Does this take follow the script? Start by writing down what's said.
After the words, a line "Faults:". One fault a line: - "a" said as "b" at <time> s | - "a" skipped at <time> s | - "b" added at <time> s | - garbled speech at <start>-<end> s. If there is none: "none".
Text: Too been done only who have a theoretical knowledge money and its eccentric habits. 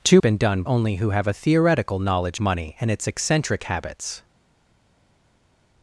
Too been done only who have a theoretical knowledge money and its eccentric habits.
Faults:
none